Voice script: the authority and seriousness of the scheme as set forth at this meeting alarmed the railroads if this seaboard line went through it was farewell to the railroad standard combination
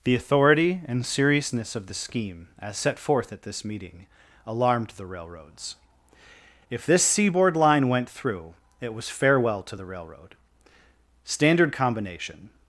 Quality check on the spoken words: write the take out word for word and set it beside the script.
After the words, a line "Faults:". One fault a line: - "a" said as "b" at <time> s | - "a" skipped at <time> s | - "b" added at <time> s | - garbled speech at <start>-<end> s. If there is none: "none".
the authority and seriousness of the scheme as set forth at this meeting alarmed the railroads if this seaboard line went through it was farewell to the railroad standard combination
Faults:
none